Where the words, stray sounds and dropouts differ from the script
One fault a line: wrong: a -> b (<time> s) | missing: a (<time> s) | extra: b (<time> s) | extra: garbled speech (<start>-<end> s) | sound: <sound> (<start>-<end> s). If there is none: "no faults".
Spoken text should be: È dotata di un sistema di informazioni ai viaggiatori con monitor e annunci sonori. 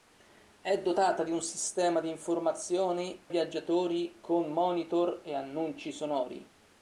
missing: ai (3.2 s)